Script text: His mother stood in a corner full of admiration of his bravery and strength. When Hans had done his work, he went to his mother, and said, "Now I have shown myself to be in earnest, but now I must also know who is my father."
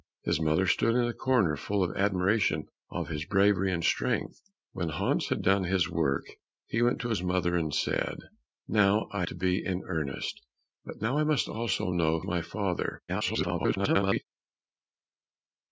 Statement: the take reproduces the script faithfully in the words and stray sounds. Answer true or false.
false